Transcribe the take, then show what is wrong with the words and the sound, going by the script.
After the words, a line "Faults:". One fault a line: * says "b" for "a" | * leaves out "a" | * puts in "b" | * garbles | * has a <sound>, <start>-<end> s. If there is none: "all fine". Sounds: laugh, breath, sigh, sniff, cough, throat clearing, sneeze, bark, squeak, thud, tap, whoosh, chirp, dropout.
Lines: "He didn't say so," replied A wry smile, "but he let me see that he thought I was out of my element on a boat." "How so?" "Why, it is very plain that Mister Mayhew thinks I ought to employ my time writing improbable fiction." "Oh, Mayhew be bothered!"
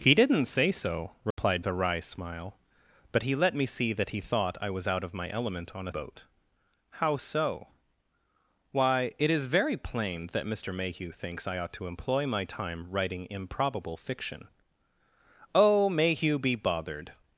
"He didn't say so," replied A wry smile, "but he let me see that he thought I was out of my element on a boat." "How so?" "Why, it is very plain that Mister Mayhew thinks I ought to employ my time writing improbable fiction." "Oh, Mayhew be bothered!"
Faults:
* has a dropout, 1.3-1.4 s